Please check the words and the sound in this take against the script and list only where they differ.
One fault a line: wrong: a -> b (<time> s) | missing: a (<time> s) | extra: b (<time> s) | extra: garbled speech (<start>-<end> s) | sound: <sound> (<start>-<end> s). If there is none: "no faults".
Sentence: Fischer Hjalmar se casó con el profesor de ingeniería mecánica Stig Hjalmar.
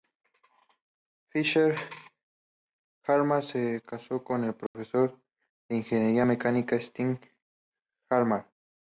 sound: dropout (4.7-4.7 s)